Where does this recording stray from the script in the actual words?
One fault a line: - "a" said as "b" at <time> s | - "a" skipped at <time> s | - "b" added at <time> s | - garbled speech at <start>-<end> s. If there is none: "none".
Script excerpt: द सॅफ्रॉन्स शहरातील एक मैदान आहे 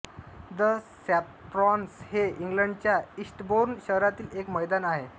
- "हे इंग्लंडच्या ईस्टबोर्न" added at 2.0 s